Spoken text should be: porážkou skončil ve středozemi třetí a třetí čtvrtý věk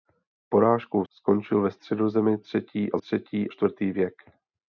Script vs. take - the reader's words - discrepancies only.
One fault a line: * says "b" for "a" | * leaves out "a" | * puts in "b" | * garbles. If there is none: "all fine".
all fine